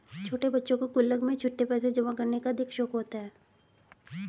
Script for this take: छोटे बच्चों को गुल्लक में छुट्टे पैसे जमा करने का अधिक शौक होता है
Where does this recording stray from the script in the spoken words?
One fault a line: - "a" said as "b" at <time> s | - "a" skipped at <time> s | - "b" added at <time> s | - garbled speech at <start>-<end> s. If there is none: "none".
none